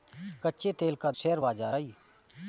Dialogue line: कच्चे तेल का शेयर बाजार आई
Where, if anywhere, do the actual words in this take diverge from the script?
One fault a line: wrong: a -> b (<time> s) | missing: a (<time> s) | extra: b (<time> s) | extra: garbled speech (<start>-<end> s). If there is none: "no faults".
no faults